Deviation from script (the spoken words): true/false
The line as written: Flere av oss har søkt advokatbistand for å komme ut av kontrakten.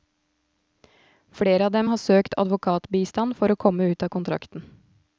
true